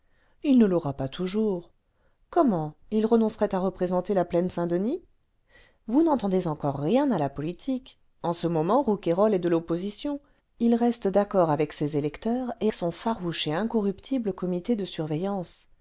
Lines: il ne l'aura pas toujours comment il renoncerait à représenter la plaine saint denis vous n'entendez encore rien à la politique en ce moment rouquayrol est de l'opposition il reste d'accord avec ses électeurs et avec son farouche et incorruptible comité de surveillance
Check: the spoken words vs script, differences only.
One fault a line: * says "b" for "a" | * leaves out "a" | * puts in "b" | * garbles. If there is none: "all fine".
* leaves out "avec"